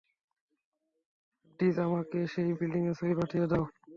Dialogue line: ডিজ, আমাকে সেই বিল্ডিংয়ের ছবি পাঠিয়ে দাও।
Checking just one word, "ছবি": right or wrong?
right